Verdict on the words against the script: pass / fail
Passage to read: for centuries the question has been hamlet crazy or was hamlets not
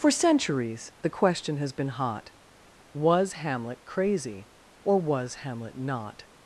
fail